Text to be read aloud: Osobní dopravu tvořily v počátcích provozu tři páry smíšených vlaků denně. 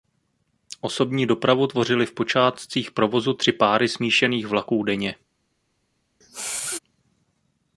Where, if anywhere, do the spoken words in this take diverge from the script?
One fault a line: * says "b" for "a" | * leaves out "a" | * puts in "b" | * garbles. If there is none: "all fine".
all fine